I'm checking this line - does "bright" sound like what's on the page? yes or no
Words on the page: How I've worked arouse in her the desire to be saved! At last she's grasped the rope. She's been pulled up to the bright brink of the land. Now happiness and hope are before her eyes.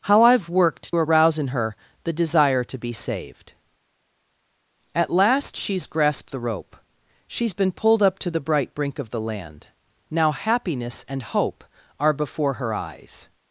yes